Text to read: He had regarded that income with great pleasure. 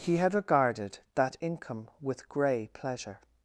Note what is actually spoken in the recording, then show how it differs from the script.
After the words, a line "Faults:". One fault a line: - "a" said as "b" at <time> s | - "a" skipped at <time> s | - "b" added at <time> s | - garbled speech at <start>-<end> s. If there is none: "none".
He had regarded that income with grey pleasure.
Faults:
- "great" said as "grey" at 2.3 s